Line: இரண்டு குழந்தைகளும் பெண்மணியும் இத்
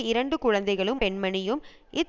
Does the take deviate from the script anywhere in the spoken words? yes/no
no